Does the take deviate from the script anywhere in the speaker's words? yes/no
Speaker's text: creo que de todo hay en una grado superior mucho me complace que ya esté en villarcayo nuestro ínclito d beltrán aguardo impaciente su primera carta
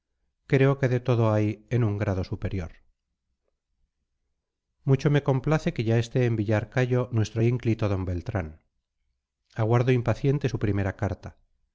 yes